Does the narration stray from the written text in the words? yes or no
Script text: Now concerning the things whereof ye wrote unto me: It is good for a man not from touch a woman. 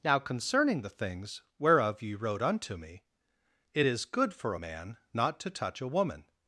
yes